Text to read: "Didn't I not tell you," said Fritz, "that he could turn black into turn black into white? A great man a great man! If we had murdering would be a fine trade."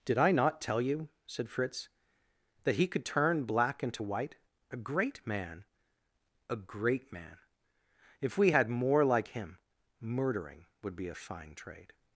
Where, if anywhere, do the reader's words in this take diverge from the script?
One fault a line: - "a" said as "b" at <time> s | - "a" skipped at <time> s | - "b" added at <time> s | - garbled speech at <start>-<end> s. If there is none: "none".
- "Didn't" said as "Did" at 0.1 s
- "turn black into" skipped at 4.0 s
- "more like him" added at 8.7 s